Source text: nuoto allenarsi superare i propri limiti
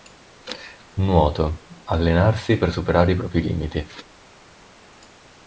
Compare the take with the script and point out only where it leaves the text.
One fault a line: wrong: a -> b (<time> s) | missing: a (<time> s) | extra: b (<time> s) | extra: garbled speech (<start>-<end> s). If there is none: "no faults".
extra: per (2.6 s)